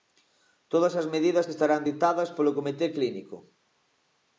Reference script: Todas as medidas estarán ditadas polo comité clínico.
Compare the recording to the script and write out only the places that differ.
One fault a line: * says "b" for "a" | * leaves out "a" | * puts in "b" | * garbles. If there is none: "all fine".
all fine